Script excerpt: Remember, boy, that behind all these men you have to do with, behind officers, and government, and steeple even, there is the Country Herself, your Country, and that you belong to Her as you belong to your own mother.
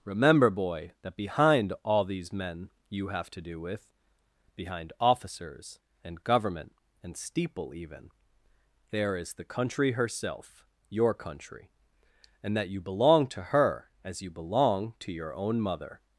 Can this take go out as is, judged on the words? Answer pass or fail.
pass